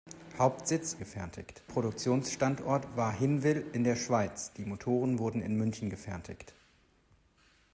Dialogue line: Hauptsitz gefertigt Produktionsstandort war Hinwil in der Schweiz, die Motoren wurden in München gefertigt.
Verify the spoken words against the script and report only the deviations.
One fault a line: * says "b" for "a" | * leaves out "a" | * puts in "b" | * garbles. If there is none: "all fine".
all fine